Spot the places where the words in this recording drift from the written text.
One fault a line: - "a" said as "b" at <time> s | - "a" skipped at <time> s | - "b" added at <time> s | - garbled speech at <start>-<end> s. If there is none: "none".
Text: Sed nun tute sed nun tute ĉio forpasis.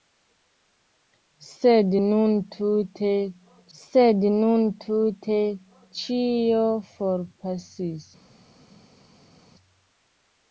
none